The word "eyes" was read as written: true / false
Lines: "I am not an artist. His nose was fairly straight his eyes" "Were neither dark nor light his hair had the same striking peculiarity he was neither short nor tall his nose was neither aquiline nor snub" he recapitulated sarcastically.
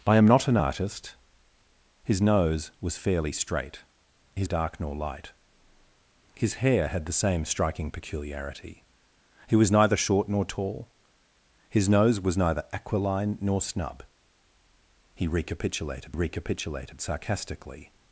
false